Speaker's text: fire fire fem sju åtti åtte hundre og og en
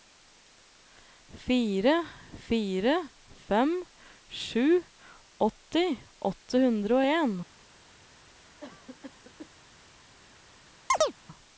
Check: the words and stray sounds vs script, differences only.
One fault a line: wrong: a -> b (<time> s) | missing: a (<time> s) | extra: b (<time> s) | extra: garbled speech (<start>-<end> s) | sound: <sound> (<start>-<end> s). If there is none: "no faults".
missing: og (7.1 s)
sound: cough (8.6-9.5 s)
sound: chirp (10.9-11.1 s)